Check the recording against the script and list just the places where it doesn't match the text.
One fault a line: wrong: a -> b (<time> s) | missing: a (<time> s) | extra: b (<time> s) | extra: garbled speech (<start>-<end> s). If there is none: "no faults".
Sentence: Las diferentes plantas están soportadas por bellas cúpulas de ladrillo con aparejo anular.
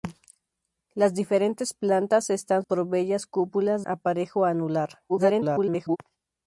missing: soportadas (2.6 s)
missing: de ladrillo con (3.8 s)
extra: garbled speech (5.1-6.0 s)